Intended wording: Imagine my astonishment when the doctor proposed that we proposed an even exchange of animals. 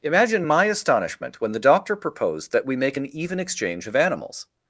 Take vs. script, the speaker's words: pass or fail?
fail